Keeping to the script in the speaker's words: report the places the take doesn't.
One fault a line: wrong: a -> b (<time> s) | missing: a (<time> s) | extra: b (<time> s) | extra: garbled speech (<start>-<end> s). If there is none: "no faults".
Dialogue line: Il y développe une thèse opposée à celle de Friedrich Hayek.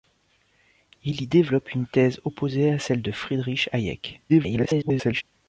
extra: garbled speech (4.3-5.2 s)